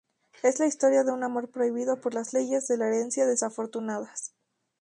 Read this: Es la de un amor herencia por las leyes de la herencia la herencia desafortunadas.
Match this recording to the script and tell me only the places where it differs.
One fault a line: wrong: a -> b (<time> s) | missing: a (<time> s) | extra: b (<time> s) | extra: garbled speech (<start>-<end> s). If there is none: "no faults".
extra: historia (0.7 s)
wrong: herencia -> prohibido (1.5 s)
missing: la herencia (3.3 s)